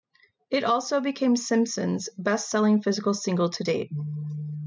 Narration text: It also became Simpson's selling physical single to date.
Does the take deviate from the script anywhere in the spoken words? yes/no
yes